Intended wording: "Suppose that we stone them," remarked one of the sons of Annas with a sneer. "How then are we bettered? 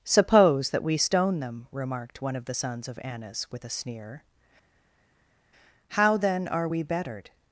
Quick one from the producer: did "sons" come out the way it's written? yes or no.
yes